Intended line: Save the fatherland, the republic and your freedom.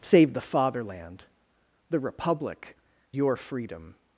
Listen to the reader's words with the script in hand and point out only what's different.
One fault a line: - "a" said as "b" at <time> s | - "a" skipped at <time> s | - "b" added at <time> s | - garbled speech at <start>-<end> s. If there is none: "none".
- "and" skipped at 2.8 s